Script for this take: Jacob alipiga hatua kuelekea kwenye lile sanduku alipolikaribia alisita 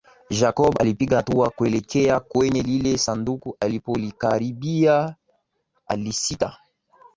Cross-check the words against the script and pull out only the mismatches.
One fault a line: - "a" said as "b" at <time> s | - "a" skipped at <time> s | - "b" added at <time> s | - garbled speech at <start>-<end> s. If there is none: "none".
none